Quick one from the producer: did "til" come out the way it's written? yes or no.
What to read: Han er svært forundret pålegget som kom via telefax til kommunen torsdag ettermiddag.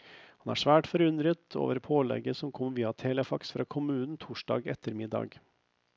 no